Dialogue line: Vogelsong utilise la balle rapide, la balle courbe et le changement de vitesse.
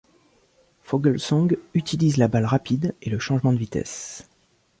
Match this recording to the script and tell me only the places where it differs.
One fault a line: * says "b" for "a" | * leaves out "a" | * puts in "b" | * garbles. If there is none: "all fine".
* leaves out "la balle courbe"